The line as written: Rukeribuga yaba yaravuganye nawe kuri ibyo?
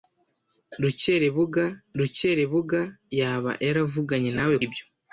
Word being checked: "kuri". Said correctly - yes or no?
no